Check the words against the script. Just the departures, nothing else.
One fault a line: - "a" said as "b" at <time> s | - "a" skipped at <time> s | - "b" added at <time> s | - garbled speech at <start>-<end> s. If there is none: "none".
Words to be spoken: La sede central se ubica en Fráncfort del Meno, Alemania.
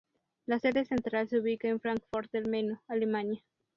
none